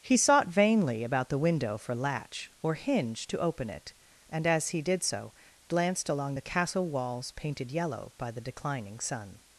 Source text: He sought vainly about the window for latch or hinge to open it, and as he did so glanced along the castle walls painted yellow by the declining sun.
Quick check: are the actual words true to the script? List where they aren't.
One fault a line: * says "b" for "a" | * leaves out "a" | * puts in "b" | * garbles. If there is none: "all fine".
all fine